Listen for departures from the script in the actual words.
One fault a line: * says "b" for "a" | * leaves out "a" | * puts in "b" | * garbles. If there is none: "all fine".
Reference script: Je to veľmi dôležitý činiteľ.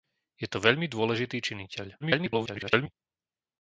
* garbles